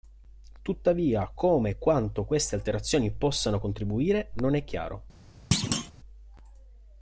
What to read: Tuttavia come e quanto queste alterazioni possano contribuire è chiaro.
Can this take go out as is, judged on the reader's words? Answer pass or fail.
fail